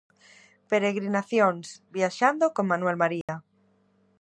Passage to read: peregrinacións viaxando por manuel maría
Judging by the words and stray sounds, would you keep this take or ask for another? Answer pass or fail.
fail